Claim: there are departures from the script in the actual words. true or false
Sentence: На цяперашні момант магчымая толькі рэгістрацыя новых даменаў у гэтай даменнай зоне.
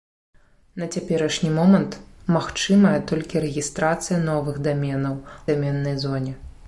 true